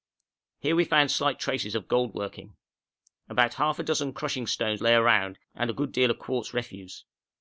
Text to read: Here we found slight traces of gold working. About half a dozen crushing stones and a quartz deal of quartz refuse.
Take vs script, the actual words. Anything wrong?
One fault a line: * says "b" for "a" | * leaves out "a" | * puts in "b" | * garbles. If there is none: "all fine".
* puts in "lay around"
* says "good" for "quartz"